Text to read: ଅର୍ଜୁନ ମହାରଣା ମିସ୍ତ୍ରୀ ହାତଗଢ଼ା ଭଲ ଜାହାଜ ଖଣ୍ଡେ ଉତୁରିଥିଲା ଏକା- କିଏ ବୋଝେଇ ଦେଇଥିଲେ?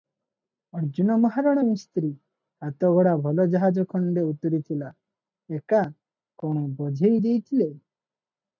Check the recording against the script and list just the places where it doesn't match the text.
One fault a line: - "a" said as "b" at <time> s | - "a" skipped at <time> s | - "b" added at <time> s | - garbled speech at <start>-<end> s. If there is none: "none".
- "କିଏ" said as "କଣ" at 6.4 s